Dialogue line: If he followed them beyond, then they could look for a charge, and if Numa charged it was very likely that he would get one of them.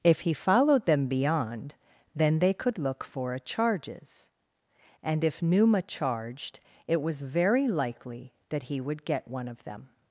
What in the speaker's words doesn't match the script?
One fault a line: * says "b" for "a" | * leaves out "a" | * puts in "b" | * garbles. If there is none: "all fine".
* says "charges" for "charge"